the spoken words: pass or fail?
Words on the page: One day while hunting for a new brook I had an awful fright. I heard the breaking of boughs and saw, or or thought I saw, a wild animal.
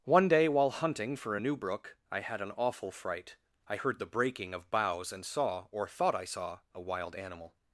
fail